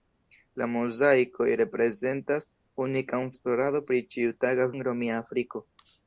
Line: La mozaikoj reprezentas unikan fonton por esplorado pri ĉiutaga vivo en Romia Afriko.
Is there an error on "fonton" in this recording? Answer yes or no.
yes